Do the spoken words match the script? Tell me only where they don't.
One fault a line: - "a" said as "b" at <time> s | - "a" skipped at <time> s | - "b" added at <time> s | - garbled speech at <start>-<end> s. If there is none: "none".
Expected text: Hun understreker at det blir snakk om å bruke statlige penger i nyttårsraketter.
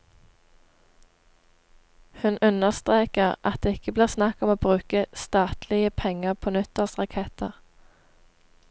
- "ikke" added at 3.8 s
- "i" said as "på" at 6.3 s